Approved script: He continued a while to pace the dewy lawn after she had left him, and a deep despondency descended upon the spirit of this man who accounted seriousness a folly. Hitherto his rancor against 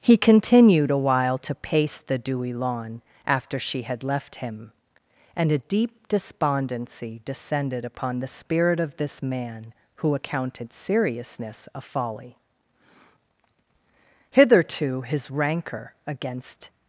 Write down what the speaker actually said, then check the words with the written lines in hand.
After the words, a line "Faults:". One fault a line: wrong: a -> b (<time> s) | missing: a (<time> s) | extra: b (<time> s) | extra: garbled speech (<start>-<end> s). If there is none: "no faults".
He continued a while to pace the dewy lawn after she had left him, and a deep despondency descended upon the spirit of this man who accounted seriousness a folly. Hitherto his rancor against
Faults:
no faults